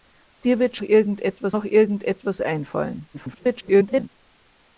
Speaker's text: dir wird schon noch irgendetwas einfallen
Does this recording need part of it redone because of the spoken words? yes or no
yes